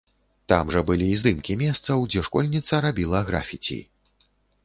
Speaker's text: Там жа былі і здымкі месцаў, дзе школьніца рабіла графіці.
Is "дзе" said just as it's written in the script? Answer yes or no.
yes